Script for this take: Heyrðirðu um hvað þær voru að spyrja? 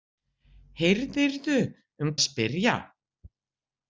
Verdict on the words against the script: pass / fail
fail